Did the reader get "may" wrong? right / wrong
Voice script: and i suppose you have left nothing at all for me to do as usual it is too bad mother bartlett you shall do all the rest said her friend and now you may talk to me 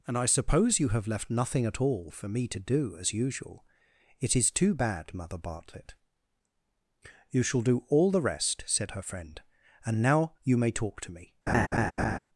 right